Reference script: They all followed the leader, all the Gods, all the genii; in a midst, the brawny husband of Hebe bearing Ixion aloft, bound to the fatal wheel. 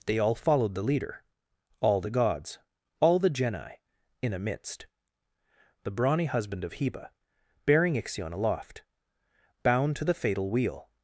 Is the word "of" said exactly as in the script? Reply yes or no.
yes